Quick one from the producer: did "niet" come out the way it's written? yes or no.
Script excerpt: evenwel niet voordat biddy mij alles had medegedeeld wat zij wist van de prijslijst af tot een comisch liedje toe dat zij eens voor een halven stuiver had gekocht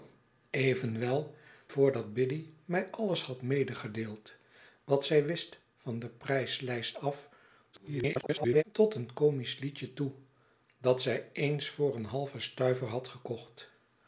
no